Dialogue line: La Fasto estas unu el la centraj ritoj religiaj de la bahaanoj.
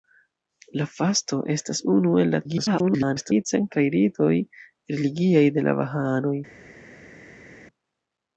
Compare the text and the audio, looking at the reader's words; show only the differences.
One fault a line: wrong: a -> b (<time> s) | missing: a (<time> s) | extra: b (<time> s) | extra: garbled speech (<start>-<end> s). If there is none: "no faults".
extra: garbled speech (2.4-3.5 s)